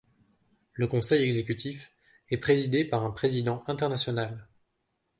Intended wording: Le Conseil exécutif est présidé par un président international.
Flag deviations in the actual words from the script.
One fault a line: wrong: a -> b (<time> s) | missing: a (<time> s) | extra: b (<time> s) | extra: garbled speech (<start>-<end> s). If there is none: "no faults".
no faults